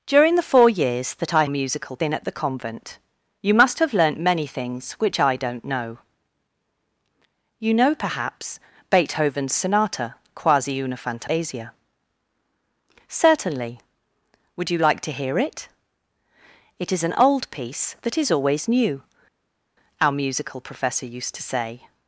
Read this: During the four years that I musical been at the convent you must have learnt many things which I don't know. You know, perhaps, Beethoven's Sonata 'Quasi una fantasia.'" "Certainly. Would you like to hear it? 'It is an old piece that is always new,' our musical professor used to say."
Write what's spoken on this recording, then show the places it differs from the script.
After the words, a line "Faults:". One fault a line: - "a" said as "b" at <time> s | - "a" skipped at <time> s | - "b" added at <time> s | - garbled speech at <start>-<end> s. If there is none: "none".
During the four years that I musical been at the convent you must have learnt many things which I don't know. You know, perhaps, Beethoven's Sonata 'Quasi una fantasia.'" "Certainly. Would you like to hear it? 'It is an old piece that is always new,' our musical professor used to say."
Faults:
none